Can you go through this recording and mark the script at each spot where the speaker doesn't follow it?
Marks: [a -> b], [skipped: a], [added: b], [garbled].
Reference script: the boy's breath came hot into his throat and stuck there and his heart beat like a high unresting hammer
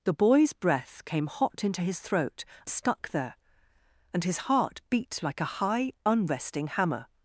the boy's breath came hot into his throat [skipped: and] stuck there and his heart beat like a high unresting hammer